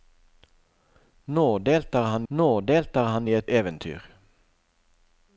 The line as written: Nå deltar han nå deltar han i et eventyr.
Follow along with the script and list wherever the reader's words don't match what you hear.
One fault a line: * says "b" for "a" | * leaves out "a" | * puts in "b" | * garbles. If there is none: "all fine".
all fine